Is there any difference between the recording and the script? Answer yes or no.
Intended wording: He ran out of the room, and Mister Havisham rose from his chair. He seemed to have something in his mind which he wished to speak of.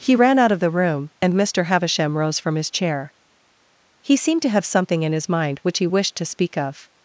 no